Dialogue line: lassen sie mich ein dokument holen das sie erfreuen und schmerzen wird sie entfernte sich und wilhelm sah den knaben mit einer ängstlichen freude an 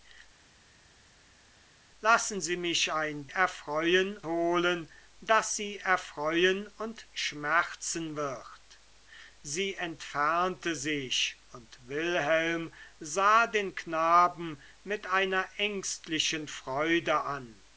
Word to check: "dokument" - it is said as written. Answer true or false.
false